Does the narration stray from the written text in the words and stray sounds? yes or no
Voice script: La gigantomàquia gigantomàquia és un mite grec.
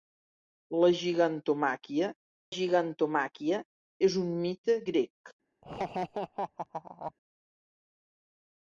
yes